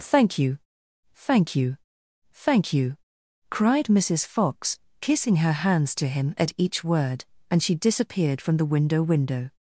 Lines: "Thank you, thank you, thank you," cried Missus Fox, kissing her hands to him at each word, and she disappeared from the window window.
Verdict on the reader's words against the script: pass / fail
pass